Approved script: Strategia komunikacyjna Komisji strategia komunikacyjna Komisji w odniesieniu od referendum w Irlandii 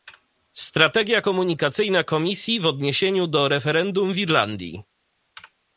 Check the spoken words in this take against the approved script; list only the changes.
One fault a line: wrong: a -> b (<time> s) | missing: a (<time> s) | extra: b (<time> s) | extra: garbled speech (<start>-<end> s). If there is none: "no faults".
missing: strategia komunikacyjna Komisji (2.6 s)
wrong: od -> do (3.3 s)